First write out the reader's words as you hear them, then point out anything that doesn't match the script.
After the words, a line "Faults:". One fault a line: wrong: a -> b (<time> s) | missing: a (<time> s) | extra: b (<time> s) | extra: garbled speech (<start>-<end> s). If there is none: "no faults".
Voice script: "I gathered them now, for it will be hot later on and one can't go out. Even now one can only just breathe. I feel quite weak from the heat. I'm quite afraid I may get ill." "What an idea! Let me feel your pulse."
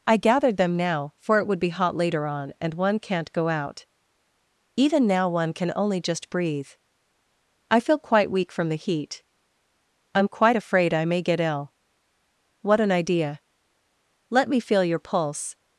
"I gathered them now, for it would be hot later on and one can't go out. Even now one can only just breathe. I feel quite weak from the heat. I'm quite afraid I may get ill." "What an idea! Let me feel your pulse."
Faults:
wrong: will -> would (1.5 s)